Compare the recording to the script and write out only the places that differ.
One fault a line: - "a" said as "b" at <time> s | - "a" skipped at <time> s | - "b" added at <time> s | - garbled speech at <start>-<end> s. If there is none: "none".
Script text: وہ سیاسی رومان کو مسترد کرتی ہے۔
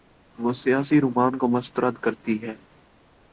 none